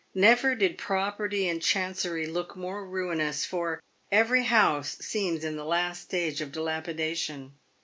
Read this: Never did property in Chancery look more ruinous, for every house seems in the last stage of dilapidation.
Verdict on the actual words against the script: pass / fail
pass